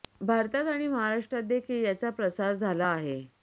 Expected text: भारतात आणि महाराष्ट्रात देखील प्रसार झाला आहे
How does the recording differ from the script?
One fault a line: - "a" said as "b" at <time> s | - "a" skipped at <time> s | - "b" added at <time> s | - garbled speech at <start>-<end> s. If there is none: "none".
- "याचा" added at 1.9 s